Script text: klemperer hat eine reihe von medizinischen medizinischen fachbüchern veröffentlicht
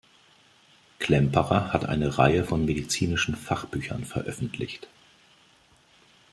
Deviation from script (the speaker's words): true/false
true